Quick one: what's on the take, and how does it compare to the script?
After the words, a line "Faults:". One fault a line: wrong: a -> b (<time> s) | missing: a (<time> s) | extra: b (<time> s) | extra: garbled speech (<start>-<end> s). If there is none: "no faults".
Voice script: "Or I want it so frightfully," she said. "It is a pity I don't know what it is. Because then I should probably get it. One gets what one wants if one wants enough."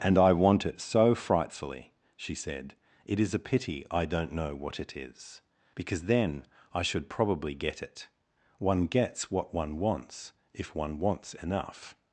"And I want it so frightfully," she said. "It is a pity I don't know what it is. Because then I should probably get it. One gets what one wants if one wants enough."
Faults:
wrong: Or -> And (0.0 s)